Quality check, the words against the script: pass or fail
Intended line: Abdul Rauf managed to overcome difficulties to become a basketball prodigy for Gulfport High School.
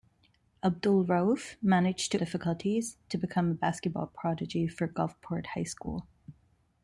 fail